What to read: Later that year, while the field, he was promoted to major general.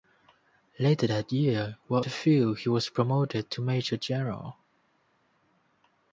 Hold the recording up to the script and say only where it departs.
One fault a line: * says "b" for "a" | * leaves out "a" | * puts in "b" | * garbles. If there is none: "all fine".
all fine